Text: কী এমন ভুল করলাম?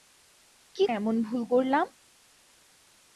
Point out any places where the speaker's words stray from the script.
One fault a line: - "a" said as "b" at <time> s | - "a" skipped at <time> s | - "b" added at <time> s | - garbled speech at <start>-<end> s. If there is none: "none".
none